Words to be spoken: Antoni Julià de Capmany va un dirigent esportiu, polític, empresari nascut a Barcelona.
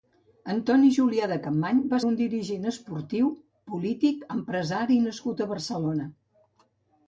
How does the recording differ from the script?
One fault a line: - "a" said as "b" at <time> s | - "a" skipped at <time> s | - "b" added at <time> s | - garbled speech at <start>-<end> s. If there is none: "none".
none